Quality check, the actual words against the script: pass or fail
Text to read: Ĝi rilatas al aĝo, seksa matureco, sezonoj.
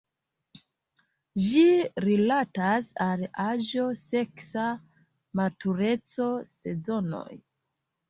pass